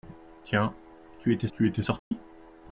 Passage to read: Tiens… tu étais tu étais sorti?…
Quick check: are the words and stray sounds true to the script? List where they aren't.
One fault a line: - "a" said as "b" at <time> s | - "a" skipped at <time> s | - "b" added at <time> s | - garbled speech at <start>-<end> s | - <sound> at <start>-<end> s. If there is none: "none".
- dropout at 2.0-2.1 s